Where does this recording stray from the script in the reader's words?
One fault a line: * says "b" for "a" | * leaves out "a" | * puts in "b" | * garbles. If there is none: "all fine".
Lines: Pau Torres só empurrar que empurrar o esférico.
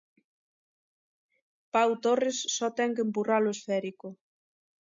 * says "ten" for "empurrar"